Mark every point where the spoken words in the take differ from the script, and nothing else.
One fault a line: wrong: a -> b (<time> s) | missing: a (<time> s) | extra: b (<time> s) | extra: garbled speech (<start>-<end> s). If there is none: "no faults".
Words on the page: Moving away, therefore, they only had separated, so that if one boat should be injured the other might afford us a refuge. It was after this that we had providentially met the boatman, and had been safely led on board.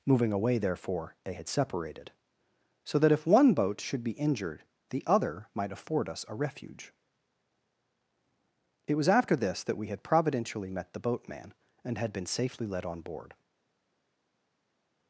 missing: only (1.3 s)